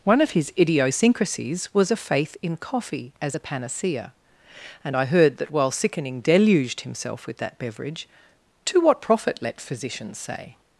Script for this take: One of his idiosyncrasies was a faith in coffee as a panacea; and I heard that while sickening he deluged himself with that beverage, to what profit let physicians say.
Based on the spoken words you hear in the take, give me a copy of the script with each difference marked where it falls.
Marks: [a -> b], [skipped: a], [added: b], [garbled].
One of his idiosyncrasies was a faith in coffee as a panacea; and I heard that while sickening [skipped: he] deluged himself with that beverage, to what profit let physicians say.